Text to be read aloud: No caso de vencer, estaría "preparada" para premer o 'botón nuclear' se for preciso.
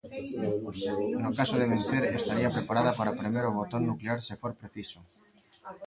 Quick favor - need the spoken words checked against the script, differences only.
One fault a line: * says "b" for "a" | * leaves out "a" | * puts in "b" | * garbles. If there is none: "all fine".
all fine